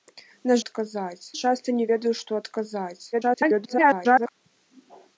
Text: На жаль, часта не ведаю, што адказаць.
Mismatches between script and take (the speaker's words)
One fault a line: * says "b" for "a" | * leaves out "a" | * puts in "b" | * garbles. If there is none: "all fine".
* says "адказаць" for "жаль"
* garbles